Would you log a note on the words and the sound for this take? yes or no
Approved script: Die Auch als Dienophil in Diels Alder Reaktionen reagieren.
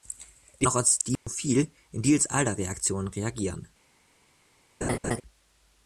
yes